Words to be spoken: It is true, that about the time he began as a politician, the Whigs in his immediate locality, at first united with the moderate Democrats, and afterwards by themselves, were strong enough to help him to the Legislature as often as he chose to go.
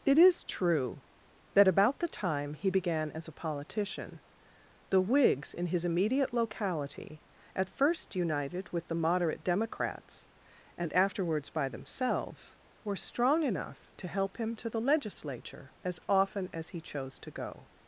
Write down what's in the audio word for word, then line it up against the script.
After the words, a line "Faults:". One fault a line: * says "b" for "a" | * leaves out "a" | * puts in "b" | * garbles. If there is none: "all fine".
It is true, that about the time he began as a politician, the Whigs in his immediate locality, at first united with the moderate Democrats, and afterwards by themselves, were strong enough to help him to the Legislature as often as he chose to go.
Faults:
all fine